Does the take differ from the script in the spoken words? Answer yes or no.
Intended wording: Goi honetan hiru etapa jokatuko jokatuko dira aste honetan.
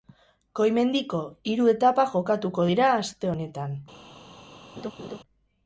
yes